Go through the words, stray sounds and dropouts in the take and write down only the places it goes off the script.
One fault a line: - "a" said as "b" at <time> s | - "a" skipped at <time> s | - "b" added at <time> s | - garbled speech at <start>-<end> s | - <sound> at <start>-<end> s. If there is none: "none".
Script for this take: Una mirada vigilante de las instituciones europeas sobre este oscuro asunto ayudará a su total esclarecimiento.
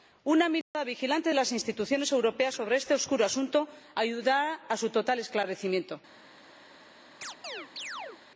- dropout at 0.6-0.7 s
- chirp at 7.2-8.2 s